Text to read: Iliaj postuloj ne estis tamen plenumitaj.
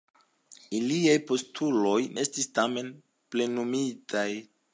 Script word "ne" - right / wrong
wrong